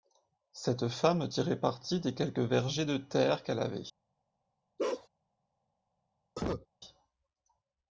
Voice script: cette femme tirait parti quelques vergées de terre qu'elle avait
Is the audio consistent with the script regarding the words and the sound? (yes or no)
no